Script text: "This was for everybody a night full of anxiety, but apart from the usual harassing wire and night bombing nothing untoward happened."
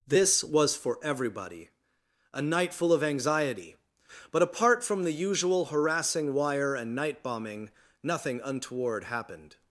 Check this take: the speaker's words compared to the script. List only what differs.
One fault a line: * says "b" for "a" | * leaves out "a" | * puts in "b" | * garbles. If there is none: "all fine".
all fine